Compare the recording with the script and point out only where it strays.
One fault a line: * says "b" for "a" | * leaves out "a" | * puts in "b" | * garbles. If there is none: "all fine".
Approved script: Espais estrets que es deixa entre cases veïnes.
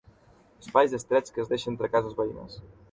all fine